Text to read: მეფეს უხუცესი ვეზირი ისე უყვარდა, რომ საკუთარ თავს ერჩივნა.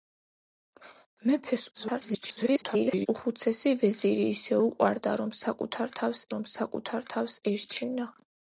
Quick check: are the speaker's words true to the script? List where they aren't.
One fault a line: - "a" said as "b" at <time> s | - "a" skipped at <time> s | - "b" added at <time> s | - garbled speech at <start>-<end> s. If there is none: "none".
- garbled speech at 1.7-3.1 s
- "რომ საკუთარ თავს" added at 6.4 s